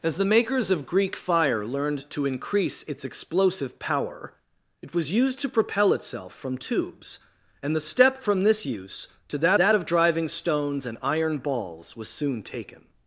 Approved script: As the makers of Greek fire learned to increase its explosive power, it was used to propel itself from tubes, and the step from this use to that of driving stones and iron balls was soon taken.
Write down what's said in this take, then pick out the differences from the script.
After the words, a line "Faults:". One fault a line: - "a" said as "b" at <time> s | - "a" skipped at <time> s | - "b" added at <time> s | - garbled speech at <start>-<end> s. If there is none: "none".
As the makers of Greek fire learned to increase its explosive power, it was used to propel itself from tubes, and the step from this use to that that of driving stones and iron balls was soon taken.
Faults:
- "that" added at 9.6 s